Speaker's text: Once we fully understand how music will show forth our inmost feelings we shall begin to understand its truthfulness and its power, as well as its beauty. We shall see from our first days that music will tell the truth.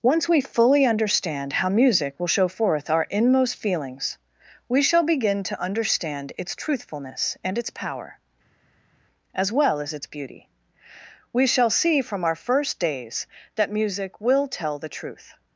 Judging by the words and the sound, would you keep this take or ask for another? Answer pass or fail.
pass